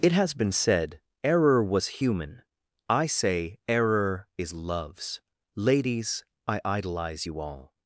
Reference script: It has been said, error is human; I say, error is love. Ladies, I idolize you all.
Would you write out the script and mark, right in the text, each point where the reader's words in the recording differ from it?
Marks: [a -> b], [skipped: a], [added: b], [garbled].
It has been said, error [is -> was] human; I say, error is [love. -> loves] Ladies, I idolize you all.